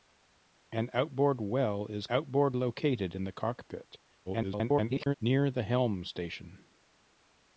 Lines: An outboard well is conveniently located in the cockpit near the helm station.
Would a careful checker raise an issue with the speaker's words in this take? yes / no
yes